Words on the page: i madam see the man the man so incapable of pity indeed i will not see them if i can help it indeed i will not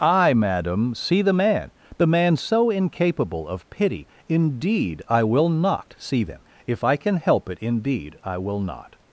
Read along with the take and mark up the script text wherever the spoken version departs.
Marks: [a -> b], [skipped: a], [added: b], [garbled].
i madam see the man the man so incapable of pity indeed i will not see them if i can help it indeed i will not